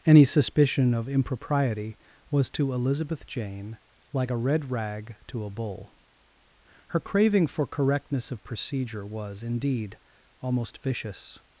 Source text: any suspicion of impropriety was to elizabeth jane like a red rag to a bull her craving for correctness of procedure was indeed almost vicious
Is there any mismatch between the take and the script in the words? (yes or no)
no